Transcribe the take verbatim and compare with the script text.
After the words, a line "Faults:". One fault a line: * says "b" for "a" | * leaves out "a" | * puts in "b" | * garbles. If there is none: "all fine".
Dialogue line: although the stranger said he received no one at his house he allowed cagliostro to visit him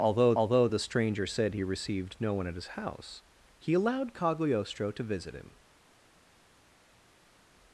although although the stranger said he received no one at his house he allowed cagliostro to visit him
Faults:
* puts in "although"